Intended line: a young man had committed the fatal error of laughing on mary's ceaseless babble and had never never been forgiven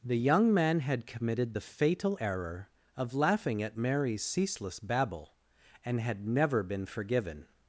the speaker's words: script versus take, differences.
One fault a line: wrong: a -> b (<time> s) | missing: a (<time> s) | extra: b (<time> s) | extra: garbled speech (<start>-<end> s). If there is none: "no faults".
wrong: a -> the (0.0 s)
wrong: on -> at (3.6 s)
missing: never (6.6 s)